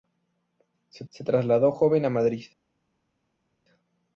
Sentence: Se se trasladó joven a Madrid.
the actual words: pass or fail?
pass